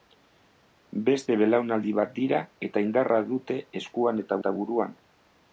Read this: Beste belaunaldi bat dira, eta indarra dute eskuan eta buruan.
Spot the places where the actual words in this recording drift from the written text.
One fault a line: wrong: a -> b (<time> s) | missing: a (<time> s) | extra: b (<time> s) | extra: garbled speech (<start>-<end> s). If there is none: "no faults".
extra: eta (4.4 s)